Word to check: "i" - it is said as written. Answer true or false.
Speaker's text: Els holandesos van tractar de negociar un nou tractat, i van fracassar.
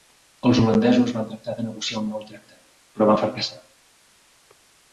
false